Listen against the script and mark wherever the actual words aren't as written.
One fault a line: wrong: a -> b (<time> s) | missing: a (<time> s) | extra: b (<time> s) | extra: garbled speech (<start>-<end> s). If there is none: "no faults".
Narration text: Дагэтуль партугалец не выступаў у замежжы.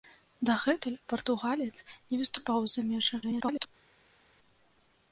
extra: garbled speech (3.2-3.7 s)